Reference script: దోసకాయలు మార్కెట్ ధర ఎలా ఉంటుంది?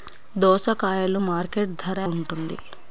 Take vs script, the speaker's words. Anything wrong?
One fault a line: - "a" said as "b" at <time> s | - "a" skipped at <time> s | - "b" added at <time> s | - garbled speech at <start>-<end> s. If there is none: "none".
- "ఎలా" skipped at 2.0 s